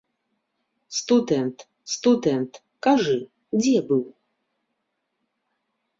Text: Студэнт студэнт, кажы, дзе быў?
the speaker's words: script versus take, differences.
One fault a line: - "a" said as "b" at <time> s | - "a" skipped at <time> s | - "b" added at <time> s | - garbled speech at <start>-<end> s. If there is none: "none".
none